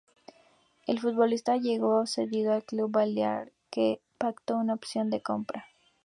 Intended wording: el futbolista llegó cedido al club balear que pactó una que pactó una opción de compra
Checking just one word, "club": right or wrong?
right